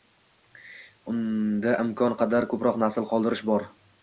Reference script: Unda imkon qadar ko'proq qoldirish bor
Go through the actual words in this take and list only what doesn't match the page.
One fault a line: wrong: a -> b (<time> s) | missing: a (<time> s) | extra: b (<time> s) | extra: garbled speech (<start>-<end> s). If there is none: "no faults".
extra: nasl (2.8 s)